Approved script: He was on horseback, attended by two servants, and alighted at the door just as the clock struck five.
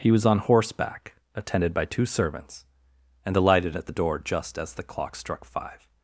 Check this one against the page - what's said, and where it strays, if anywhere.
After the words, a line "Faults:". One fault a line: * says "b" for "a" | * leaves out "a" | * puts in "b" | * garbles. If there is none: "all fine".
He was on horseback, attended by two servants, and alighted at the door just as the clock struck five.
Faults:
all fine